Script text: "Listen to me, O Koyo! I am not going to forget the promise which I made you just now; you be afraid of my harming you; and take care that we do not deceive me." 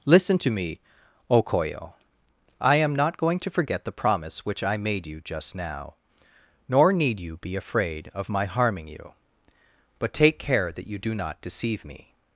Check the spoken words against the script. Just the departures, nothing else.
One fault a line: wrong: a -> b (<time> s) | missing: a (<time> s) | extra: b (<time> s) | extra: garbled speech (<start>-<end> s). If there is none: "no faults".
extra: nor need (6.7 s)
wrong: and -> but (10.0 s)
wrong: we -> you (10.9 s)